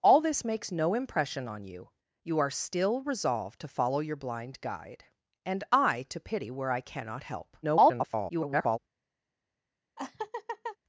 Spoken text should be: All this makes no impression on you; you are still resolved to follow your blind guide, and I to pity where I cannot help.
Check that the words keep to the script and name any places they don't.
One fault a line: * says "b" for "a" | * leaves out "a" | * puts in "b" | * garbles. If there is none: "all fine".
* garbles